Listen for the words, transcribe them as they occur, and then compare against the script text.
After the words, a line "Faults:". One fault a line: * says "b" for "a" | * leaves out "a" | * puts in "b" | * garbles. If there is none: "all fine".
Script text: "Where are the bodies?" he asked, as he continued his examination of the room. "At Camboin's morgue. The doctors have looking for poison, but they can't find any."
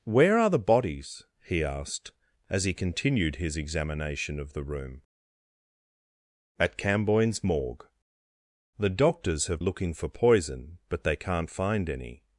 "Where are the bodies?" he asked, as he continued his examination of the room. "At Camboin's morgue. The doctors have looking for poison, but they can't find any."
Faults:
all fine